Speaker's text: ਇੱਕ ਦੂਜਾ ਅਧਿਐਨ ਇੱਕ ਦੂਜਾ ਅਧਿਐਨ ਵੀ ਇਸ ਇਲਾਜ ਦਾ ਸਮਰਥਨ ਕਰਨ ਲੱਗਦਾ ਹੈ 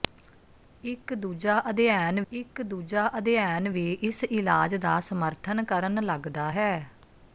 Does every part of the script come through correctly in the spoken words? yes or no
yes